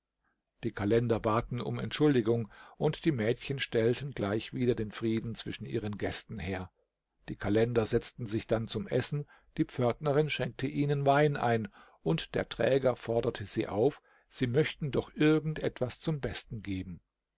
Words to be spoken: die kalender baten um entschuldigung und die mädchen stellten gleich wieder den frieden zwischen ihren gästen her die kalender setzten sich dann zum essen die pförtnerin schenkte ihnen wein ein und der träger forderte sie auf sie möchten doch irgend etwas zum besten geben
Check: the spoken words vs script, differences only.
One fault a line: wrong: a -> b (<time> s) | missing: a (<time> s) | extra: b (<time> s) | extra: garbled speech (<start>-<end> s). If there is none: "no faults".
no faults